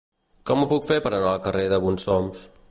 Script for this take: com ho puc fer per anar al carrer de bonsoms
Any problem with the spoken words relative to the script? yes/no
no